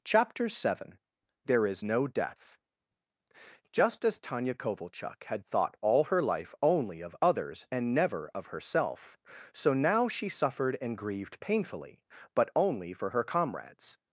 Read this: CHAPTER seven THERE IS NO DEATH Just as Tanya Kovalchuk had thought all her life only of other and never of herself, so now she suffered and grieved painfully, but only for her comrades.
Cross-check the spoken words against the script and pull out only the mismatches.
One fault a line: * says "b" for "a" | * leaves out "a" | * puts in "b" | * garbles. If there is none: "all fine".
* says "others" for "other"